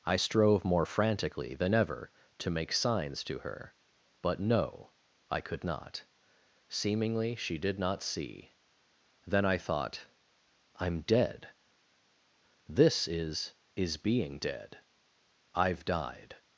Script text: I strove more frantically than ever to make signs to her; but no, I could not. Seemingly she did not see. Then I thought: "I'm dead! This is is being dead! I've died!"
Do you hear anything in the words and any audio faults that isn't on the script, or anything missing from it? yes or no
no